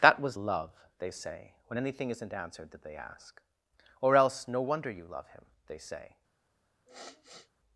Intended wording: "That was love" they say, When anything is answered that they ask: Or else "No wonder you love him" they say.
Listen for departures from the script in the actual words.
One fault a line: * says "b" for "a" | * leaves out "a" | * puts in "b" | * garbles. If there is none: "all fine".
* says "isn't" for "is"